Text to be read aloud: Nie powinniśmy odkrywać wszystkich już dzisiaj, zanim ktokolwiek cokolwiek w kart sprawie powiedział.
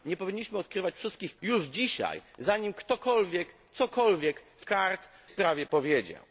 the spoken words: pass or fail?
pass